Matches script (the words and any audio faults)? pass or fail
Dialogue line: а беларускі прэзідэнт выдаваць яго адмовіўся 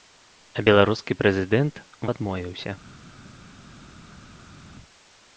fail